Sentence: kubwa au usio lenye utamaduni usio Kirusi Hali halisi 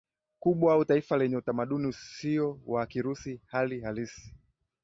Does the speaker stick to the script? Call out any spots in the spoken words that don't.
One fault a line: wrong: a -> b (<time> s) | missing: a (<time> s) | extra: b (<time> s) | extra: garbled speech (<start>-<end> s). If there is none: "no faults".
wrong: usio -> taifa (0.8 s)
extra: wa (2.7 s)